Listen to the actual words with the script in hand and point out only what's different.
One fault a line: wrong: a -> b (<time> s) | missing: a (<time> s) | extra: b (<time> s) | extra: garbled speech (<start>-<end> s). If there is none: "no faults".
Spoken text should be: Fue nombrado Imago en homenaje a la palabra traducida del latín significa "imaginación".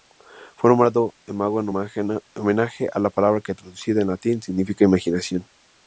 extra: que (3.4 s)